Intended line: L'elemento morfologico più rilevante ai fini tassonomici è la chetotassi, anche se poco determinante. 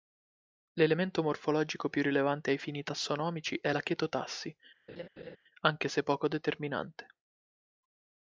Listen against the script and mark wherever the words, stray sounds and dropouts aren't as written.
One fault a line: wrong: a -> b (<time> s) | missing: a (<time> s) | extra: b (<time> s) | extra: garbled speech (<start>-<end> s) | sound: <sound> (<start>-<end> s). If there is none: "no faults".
sound: laugh (4.9-5.4 s)